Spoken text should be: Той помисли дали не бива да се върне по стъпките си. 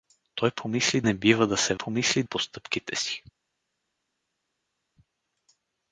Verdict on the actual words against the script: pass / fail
fail